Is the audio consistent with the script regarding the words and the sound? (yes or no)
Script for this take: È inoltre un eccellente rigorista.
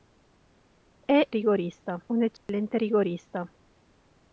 no